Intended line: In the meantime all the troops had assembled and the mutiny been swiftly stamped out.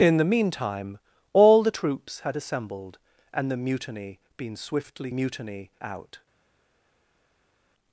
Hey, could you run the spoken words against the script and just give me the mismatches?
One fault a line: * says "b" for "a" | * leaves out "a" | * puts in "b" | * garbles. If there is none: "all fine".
* says "mutiny" for "stamped"